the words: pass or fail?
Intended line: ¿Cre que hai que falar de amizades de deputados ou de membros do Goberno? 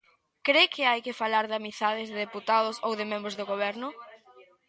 pass